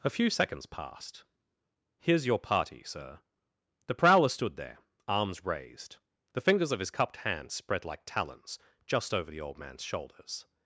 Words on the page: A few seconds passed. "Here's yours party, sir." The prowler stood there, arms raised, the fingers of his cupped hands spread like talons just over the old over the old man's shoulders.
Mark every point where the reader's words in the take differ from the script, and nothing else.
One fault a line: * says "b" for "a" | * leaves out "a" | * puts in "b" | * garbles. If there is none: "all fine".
* says "your" for "yours"
* leaves out "over the old"